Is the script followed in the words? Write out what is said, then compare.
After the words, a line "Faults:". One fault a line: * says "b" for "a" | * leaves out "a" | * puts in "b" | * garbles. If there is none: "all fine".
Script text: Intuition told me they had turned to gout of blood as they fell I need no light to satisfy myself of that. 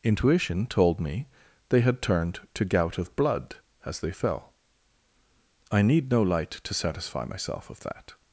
Intuition told me they had turned to gout of blood as they fell I need no light to satisfy myself of that.
Faults:
all fine